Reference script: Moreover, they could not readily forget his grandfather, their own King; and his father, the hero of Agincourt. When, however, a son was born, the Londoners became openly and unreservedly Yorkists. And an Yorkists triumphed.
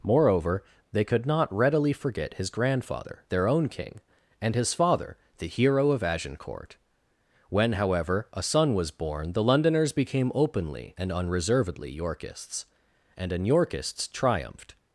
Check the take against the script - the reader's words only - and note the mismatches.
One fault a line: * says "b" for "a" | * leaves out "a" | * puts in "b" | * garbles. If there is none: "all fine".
all fine